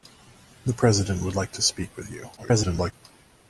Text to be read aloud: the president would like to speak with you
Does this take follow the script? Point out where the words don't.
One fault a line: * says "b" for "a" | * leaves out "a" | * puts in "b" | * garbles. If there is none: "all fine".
* garbles